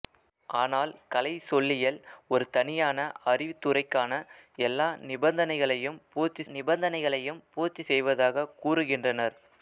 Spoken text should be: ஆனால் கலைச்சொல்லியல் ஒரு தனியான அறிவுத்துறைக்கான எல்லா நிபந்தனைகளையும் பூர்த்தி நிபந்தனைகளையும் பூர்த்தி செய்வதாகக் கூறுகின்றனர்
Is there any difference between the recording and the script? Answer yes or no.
no